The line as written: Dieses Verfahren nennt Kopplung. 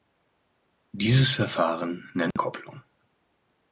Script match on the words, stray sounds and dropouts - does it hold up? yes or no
no